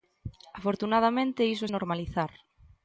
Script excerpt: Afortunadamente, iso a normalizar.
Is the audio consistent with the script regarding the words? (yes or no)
yes